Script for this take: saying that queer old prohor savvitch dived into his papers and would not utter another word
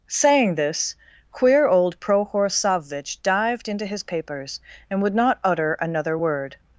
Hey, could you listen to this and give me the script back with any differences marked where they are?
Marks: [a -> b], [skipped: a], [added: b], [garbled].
saying [that -> this] queer old prohor savvitch dived into his papers and would not utter another word